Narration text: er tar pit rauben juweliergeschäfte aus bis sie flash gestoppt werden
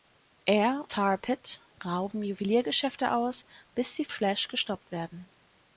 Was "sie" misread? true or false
false